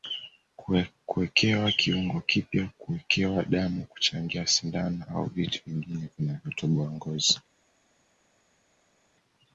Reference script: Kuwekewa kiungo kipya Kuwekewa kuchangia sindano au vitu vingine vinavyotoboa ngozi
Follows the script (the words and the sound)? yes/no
no